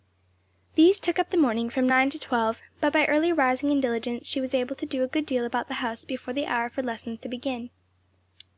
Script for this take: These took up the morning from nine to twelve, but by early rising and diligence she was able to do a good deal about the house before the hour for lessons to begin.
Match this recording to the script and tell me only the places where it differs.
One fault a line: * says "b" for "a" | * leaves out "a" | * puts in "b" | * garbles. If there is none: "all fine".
all fine